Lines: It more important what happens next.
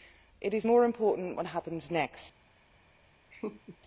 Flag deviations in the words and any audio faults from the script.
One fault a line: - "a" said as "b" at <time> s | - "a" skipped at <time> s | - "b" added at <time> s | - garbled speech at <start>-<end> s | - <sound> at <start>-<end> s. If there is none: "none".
- "is" added at 0.5 s
- laugh at 3.3-3.8 s